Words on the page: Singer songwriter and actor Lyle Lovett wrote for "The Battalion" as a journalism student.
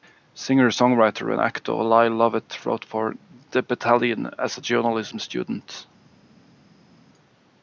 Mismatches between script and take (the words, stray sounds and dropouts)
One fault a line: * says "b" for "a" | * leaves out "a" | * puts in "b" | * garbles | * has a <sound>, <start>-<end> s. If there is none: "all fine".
all fine